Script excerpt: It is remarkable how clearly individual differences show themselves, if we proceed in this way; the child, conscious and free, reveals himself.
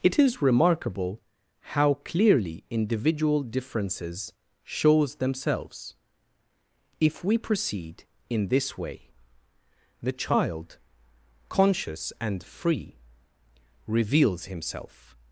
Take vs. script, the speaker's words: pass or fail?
fail